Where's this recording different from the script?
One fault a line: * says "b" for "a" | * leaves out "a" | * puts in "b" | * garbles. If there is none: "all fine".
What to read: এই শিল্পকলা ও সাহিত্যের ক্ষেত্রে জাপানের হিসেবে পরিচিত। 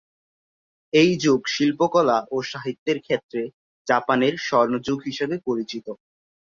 * puts in "যুগ"
* puts in "স্বর্ণযুগ"